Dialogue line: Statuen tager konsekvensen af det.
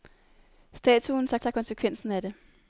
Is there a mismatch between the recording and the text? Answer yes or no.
yes